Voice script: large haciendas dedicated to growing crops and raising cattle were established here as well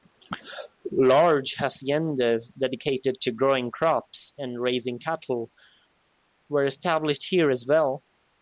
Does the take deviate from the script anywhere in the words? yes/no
no